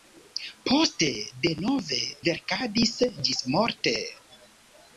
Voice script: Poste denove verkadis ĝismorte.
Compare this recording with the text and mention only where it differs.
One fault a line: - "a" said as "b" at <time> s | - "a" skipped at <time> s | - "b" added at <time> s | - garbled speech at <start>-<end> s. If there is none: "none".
none